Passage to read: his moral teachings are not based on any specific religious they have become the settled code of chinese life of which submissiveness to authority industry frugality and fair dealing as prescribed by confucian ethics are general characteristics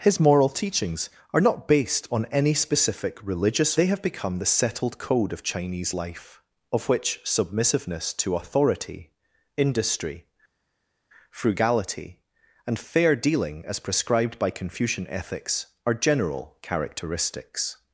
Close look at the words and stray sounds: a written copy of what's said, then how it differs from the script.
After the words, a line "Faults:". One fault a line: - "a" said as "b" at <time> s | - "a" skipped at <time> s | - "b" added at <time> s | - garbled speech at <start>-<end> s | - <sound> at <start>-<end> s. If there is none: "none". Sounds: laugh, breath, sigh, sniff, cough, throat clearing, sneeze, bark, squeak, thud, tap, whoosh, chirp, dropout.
his moral teachings are not based on any specific religious they have become the settled code of chinese life of which submissiveness to authority industry frugality and fair dealing as prescribed by confucian ethics are general characteristics
Faults:
none